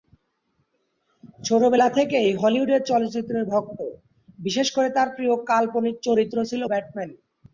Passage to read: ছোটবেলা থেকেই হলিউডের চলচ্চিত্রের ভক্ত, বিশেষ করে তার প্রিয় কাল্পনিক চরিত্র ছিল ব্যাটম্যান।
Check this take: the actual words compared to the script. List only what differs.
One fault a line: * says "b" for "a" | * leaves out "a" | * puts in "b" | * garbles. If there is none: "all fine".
all fine